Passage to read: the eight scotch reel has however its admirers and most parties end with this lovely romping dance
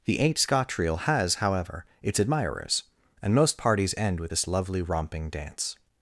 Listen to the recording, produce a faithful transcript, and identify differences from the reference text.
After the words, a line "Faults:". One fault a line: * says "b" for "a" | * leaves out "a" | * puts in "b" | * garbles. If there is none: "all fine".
the eight scotch reel has however its admirers and most parties end with this lovely romping dance
Faults:
all fine